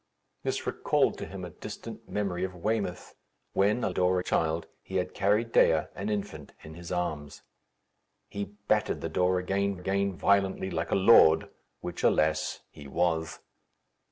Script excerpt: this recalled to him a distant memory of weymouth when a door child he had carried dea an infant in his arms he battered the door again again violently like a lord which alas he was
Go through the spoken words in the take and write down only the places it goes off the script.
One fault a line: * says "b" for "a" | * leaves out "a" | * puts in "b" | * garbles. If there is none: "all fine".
all fine